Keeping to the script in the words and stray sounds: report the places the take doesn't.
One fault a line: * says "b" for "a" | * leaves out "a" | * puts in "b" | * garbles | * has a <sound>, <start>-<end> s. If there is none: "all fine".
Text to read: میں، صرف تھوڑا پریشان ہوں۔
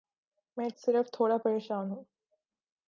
all fine